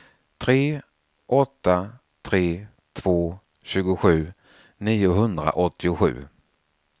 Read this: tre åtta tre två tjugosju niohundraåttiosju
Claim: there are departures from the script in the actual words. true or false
false